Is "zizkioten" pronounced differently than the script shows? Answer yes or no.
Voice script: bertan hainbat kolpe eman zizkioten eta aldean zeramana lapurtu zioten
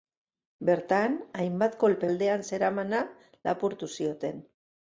yes